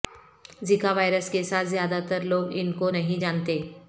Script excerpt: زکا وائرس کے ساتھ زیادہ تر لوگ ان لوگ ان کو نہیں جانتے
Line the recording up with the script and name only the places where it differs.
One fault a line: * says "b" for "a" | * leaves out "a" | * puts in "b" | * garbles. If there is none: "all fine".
* leaves out "لوگ ان"